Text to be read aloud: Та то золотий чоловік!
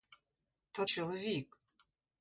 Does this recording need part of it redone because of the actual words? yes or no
yes